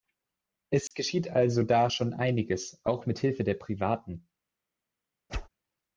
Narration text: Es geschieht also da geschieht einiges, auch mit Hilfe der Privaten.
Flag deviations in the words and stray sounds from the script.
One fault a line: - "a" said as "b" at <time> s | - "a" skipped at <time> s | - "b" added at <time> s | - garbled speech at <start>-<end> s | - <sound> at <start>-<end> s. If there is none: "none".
- dropout at 0.9-0.9 s
- "geschieht" said as "schon" at 1.9 s
- whoosh at 5.3-5.5 s